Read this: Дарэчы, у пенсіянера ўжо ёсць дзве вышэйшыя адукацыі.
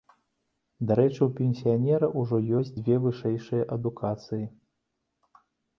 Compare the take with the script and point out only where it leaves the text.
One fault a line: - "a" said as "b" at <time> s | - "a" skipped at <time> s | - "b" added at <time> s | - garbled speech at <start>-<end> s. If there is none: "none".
none